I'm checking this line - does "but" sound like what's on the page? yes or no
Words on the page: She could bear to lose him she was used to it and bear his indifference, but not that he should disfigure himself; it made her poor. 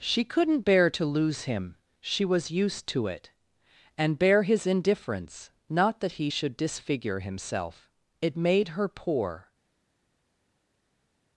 no